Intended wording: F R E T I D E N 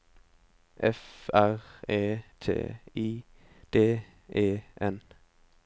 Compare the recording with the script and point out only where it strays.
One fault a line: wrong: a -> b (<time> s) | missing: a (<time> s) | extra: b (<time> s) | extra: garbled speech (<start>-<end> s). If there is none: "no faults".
no faults